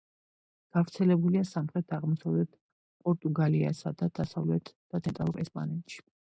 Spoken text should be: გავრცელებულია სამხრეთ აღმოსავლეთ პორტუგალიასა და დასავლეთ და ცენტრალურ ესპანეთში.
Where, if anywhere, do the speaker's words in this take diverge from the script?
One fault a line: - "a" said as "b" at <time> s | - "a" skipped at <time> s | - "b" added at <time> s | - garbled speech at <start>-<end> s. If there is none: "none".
none